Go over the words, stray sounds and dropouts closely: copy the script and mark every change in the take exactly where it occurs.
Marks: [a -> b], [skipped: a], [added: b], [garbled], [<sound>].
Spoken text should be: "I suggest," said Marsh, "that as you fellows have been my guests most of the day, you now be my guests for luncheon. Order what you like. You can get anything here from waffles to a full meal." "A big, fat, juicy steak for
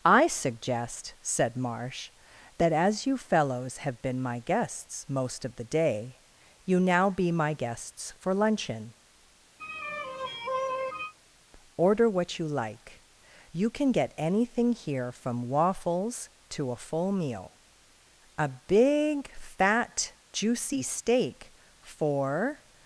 "I suggest," said Marsh, "that as you fellows have been my guests most of the day, you now be my guests for luncheon. [sigh] Order what you like. You can get anything here from waffles to a full meal." "A big, fat, juicy steak for